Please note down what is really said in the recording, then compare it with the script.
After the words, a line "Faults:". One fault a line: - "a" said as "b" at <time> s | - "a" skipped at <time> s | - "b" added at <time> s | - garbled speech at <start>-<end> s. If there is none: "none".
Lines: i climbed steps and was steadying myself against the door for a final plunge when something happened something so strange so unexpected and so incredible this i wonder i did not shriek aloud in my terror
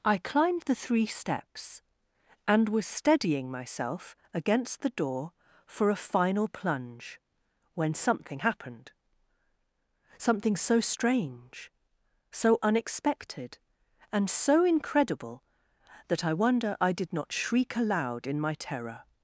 i climbed the three steps and was steadying myself against the door for a final plunge when something happened something so strange so unexpected and so incredible that i wonder i did not shriek aloud in my terror
Faults:
- "the three" added at 0.6 s
- "this" said as "that" at 16.1 s